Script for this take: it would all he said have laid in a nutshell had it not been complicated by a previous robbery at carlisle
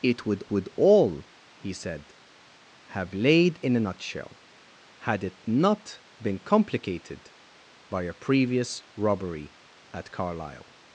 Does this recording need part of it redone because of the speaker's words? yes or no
yes